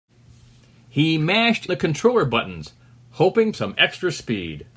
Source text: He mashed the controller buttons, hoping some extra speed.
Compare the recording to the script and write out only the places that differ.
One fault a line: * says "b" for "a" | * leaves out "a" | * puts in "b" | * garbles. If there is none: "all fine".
all fine